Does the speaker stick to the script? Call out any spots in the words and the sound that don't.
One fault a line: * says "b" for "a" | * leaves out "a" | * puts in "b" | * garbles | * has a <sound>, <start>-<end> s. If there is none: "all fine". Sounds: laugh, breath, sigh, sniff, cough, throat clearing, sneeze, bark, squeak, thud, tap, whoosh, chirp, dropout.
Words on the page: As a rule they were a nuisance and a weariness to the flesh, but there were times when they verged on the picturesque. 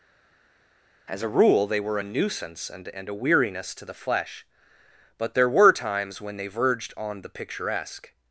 * puts in "and"